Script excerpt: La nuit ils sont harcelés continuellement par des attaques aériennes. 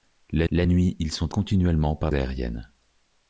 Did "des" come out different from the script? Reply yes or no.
yes